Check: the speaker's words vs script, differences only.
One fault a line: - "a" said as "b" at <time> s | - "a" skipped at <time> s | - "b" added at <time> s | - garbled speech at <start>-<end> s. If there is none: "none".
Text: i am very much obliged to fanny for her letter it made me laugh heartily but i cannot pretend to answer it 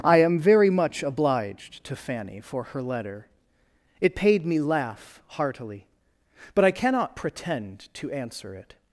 - "made" said as "paid" at 4.2 s